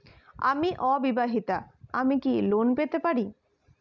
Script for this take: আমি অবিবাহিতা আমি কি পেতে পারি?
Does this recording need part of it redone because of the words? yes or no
yes